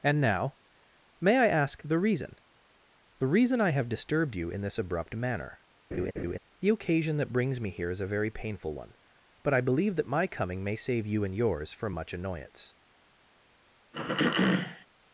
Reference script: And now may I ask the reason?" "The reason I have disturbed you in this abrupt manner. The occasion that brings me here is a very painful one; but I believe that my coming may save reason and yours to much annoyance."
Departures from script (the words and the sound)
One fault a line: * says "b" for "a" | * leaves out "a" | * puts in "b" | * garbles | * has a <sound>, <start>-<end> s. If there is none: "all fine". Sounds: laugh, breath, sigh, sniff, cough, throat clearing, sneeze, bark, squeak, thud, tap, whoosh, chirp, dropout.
* has a laugh, 5.9-6.4 s
* says "you" for "reason"
* says "from" for "to"
* has a throat clearing, 13.9-14.9 s